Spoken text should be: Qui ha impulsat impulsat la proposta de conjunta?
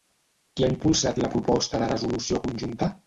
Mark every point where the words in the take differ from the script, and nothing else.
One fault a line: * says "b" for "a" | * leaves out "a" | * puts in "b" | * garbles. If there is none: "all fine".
* leaves out "impulsat"
* puts in "resolució"